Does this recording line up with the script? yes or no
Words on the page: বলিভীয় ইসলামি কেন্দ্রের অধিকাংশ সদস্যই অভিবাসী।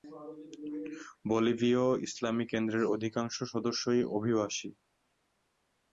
yes